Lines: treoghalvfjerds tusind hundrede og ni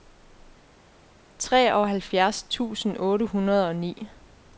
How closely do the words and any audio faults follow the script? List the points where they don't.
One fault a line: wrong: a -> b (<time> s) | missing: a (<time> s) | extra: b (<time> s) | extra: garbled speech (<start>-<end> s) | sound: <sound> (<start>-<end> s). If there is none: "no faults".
extra: otte (3.0 s)